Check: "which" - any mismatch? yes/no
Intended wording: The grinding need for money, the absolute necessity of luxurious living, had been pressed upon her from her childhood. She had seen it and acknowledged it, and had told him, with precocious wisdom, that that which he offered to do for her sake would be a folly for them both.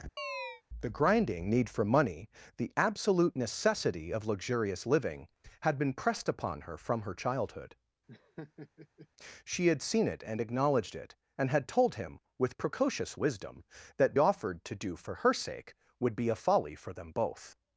yes